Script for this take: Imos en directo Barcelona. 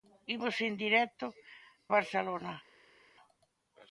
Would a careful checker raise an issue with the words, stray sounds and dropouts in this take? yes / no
no